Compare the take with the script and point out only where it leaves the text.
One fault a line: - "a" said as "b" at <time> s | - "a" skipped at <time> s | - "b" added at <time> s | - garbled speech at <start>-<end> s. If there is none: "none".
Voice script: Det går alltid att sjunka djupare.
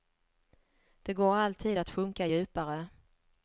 none